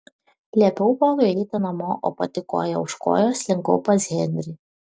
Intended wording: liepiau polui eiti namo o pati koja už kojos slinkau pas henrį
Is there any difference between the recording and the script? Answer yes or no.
no